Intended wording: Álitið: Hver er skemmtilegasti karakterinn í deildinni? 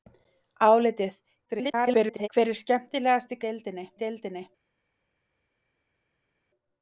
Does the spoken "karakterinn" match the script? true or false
false